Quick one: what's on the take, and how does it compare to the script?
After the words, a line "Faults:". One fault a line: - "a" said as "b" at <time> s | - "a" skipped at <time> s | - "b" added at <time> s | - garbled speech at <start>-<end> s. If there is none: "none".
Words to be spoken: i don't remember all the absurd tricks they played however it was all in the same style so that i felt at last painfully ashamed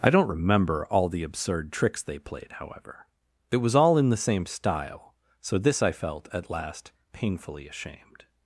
i don't remember all the absurd tricks they played however it was all in the same style so this i felt at last painfully ashamed
Faults:
- "that" said as "this" at 5.6 s